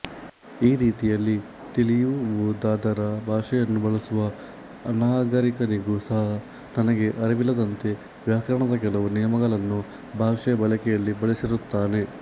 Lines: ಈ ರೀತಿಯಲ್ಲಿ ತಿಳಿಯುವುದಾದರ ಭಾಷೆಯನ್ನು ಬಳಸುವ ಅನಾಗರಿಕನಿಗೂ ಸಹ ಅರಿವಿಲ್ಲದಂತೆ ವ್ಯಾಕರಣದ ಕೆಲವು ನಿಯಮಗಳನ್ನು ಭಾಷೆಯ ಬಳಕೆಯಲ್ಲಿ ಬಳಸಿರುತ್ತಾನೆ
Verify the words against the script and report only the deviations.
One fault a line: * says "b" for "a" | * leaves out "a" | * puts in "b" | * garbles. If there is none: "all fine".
* puts in "ತನಗೆ"